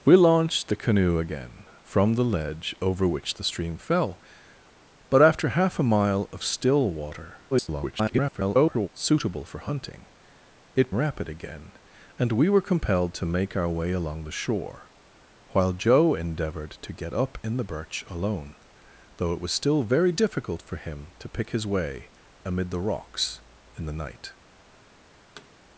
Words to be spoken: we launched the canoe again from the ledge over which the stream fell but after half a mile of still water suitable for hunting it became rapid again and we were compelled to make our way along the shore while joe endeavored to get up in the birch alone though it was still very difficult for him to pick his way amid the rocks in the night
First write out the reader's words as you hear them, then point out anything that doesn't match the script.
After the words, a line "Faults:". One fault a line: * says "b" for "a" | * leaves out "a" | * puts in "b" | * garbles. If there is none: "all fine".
we launched the canoe again from the ledge over which the stream fell but after half a mile of still water [garbled] suitable for hunting it rapid again and we were compelled to make our way along the shore while joe endeavored to get up in the birch alone though it was still very difficult for him to pick his way amid the rocks in the night
Faults:
* garbles
* leaves out "became"